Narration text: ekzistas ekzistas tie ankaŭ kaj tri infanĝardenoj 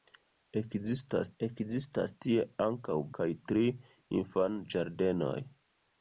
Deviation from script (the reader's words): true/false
false